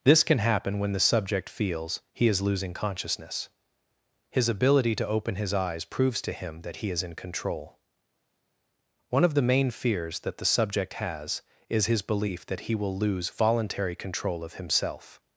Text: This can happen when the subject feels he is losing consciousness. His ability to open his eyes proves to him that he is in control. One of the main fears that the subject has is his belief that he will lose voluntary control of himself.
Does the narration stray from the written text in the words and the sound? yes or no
no